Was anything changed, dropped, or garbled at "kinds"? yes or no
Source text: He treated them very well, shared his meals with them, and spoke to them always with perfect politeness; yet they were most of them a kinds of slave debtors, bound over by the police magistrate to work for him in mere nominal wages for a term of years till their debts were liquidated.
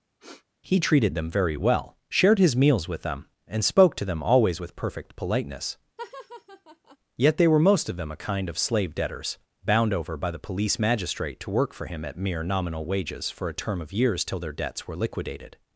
yes